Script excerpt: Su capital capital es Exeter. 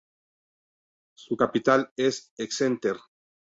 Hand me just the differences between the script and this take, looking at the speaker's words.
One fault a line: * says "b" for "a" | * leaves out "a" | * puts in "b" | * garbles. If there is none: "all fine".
* leaves out "capital"